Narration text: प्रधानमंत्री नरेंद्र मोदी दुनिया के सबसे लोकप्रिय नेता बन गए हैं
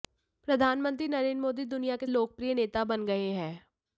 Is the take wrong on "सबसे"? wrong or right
wrong